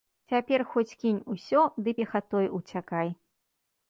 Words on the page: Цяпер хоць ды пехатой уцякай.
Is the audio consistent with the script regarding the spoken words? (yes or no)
no